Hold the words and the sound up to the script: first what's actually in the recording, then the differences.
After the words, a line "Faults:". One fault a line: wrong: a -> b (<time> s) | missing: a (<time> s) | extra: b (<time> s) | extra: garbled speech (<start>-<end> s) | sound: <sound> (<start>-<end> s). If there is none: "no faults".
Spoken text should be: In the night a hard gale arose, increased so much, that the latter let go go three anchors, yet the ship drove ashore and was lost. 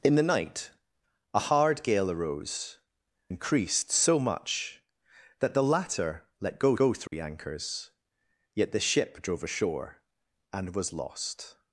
In the night a hard gale arose, increased so much, that the latter let go go three anchors, yet the ship drove ashore and was lost.
Faults:
sound: dropout (7.1-7.1 s)